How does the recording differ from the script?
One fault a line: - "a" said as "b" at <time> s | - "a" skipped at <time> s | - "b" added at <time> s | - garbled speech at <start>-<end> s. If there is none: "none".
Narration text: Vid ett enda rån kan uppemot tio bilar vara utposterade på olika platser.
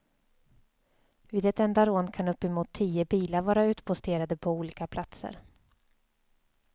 none